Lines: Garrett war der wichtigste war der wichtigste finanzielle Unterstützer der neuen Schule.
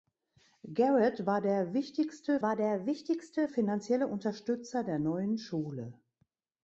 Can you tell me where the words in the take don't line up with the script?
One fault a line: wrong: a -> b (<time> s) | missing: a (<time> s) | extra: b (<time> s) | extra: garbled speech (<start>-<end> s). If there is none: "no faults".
no faults